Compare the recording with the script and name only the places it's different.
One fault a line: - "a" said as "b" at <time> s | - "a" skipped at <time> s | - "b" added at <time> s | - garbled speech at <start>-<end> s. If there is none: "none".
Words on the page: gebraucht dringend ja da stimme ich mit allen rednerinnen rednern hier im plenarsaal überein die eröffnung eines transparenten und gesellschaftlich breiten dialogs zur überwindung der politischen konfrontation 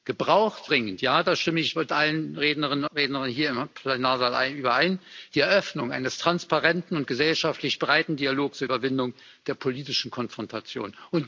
none